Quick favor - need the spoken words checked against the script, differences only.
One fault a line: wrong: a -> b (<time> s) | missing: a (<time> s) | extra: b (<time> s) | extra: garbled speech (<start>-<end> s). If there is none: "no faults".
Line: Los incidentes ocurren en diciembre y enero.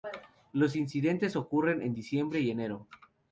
no faults